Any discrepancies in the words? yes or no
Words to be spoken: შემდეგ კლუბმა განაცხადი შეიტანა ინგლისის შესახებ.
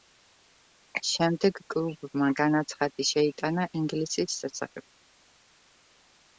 no